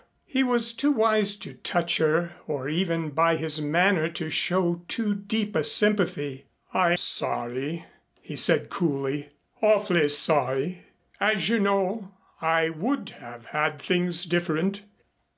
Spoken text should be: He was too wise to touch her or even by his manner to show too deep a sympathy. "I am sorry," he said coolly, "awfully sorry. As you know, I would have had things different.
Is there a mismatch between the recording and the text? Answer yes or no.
yes